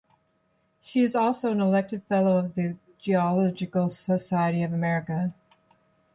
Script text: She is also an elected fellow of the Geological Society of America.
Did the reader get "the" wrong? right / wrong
right